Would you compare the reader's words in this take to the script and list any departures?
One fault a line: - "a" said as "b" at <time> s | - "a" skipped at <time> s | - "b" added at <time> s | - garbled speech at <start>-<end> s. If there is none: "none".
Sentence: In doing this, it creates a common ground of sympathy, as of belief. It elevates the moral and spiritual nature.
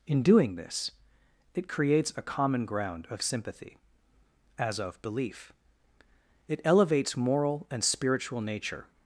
- "the" skipped at 7.2 s